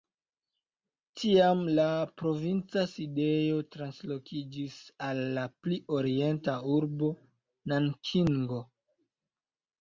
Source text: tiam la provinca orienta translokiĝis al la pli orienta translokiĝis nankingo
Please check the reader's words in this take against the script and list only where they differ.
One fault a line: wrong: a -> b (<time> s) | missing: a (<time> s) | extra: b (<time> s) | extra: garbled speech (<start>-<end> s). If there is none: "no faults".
wrong: orienta -> sidejo (2.9 s)
wrong: translokiĝis -> urbo (6.8 s)